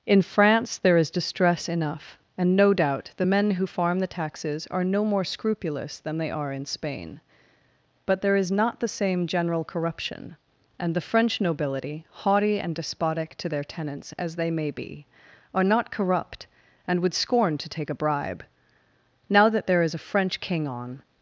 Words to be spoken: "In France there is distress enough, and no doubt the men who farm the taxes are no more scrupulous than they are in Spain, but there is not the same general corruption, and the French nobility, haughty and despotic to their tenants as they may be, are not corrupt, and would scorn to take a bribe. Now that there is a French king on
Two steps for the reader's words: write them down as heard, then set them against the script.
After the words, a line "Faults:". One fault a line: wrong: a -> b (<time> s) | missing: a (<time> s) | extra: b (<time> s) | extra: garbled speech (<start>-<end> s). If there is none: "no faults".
"In France there is distress enough, and no doubt the men who farm the taxes are no more scrupulous than they are in Spain, but there is not the same general corruption, and the French nobility, haughty and despotic to their tenants as they may be, are not corrupt, and would scorn to take a bribe. Now that there is a French king on
Faults:
no faults